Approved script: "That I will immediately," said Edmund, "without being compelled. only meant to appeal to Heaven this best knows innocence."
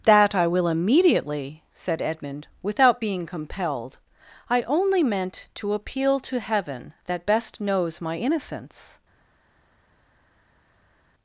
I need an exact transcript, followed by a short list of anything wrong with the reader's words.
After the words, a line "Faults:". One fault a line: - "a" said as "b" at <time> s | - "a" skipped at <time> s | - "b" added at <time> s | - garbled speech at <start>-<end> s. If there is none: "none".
"That I will immediately," said Edmund, "without being compelled. I only meant to appeal to Heaven that best knows my innocence."
Faults:
- "I" added at 4.5 s
- "this" said as "that" at 7.1 s
- "my" added at 8.0 s